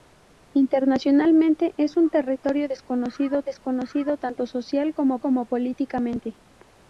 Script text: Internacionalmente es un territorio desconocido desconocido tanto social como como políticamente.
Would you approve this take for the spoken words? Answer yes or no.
yes